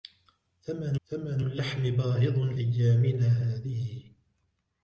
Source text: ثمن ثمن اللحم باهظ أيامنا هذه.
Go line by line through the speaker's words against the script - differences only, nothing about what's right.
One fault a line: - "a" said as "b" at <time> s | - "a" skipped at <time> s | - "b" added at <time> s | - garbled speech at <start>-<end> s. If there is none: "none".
none